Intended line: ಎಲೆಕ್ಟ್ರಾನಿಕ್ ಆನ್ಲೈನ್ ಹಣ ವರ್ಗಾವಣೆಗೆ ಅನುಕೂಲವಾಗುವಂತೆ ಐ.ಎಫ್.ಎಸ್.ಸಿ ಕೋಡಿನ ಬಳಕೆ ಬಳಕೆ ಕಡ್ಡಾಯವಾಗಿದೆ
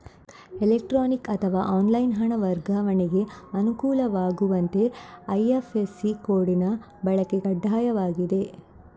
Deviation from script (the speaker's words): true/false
true